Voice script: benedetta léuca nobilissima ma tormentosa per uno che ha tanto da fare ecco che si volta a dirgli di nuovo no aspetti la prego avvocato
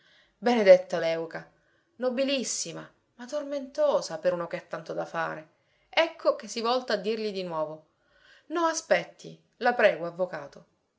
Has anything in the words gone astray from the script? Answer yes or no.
no